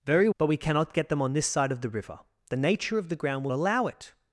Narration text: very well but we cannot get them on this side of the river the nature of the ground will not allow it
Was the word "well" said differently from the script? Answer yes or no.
yes